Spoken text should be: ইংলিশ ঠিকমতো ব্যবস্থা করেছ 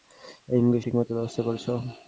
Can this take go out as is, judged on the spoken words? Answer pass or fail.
pass